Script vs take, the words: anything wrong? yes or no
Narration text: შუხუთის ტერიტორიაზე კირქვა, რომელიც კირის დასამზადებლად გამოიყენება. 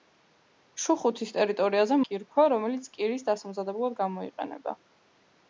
no